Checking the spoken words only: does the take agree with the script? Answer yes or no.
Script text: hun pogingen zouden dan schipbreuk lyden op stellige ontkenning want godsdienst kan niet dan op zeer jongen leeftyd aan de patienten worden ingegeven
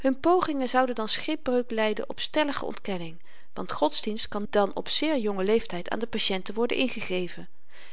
no